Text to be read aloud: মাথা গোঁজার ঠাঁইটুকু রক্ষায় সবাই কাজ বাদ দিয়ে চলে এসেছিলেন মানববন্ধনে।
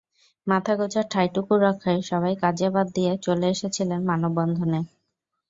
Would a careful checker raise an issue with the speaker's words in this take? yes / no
no